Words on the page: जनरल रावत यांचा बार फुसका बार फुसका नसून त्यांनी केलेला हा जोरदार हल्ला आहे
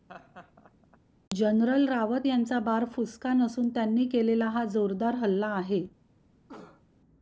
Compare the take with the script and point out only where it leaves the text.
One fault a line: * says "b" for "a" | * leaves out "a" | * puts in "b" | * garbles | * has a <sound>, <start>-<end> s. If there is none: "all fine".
* has a laugh, 0.1-1.0 s
* leaves out "बार फुसका"
* has a cough, 6.5-6.8 s